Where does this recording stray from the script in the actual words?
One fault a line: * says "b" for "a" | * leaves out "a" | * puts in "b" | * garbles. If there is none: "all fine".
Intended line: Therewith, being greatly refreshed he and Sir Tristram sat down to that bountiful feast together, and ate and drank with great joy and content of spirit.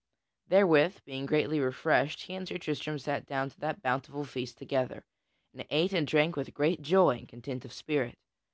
all fine